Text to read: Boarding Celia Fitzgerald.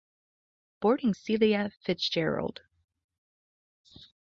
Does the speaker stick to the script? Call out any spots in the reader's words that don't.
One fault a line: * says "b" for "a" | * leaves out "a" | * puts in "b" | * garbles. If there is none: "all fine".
all fine